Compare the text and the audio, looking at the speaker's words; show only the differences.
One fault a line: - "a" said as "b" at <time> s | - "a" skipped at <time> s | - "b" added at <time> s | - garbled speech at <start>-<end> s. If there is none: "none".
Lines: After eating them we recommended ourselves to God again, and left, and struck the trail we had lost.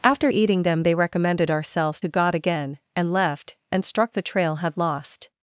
- "we" said as "they" at 0.8 s
- "we" skipped at 4.6 s